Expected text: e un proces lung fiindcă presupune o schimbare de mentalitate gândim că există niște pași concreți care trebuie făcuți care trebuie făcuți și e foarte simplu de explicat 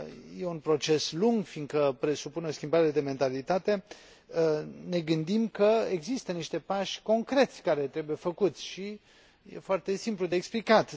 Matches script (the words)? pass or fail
fail